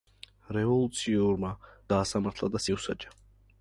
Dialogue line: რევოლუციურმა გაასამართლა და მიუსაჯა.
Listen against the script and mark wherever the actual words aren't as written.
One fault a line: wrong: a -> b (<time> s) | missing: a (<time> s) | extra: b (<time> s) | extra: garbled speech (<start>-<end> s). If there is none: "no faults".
no faults